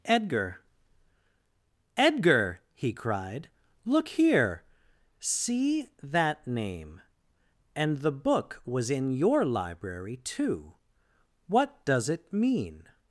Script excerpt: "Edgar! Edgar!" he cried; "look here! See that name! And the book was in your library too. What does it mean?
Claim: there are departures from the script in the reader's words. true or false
false